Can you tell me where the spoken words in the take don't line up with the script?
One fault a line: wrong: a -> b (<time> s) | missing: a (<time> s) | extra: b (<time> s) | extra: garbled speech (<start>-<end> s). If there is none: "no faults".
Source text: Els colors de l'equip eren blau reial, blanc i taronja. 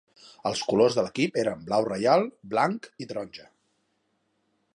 no faults